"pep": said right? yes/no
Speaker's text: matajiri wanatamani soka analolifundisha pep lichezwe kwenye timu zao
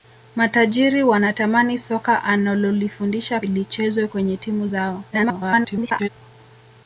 no